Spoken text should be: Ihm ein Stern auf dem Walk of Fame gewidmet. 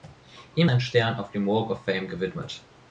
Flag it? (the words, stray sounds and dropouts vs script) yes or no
no